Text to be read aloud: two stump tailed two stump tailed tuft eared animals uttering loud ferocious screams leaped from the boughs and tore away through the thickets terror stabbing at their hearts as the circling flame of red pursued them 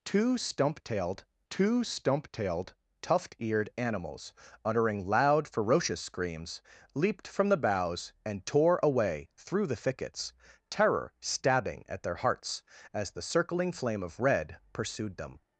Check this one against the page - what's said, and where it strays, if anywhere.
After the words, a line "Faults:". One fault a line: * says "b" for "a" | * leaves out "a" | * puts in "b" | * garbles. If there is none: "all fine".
two stump tailed two stump tailed tuft eared animals uttering loud ferocious screams leaped from the boughs and tore away through the thickets terror stabbing at their hearts as the circling flame of red pursued them
Faults:
all fine